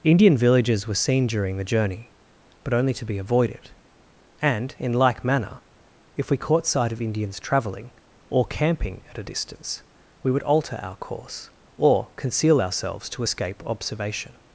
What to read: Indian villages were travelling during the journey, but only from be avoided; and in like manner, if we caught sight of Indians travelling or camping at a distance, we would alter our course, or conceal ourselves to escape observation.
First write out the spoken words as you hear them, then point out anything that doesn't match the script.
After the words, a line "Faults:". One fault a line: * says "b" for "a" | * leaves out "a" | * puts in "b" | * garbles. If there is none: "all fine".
Indian villages were seen during the journey, but only to be avoided; and in like manner, if we caught sight of Indians travelling or camping at a distance, we would alter our course, or conceal ourselves to escape observation.
Faults:
* says "seen" for "travelling"
* says "to" for "from"